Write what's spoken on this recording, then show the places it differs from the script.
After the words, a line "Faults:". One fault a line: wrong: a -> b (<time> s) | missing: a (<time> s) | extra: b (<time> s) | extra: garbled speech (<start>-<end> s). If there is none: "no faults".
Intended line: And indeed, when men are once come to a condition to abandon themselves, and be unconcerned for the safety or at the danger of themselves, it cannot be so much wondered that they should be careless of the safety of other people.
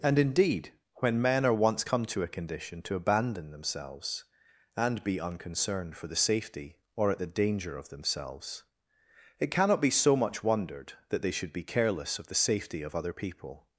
And indeed, when men are once come to a condition to abandon themselves, and be unconcerned for the safety or at the danger of themselves, it cannot be so much wondered that they should be careless of the safety of other people.
Faults:
no faults